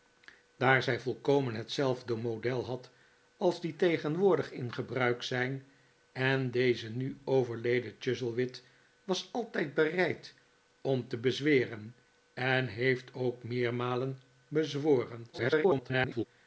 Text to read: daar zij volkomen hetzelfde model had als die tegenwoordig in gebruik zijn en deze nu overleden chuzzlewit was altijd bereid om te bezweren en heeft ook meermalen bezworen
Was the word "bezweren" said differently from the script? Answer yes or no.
no